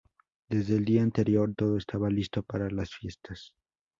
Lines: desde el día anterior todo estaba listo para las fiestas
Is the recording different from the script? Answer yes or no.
no